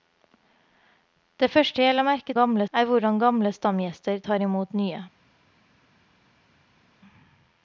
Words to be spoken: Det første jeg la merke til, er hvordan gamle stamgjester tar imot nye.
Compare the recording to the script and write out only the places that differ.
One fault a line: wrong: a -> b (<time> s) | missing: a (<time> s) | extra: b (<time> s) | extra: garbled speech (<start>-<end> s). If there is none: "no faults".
wrong: til -> gamle (2.3 s)